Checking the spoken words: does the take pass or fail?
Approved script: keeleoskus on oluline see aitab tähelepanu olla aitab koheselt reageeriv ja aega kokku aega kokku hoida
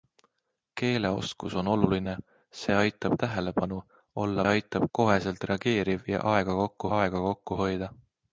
pass